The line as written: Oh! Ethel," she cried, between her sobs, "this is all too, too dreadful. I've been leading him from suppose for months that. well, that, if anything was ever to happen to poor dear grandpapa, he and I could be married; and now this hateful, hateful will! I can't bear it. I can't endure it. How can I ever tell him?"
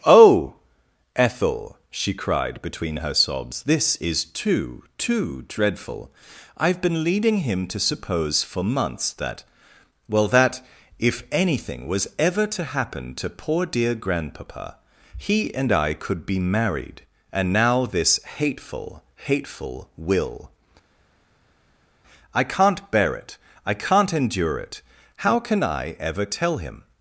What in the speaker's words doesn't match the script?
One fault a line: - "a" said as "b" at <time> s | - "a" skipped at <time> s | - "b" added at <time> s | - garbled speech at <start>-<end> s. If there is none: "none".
- "all" skipped at 4.2 s
- "from" said as "to" at 7.7 s